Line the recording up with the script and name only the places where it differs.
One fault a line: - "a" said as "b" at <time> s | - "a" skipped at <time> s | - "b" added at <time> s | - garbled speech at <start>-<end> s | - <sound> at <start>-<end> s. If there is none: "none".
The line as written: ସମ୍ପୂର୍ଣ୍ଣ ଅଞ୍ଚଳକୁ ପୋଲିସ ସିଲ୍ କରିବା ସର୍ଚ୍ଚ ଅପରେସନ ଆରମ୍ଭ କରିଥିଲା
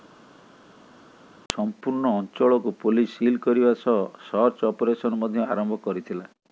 - "ସହ" added at 3.8 s
- "ମଧ୍ୟ" added at 5.2 s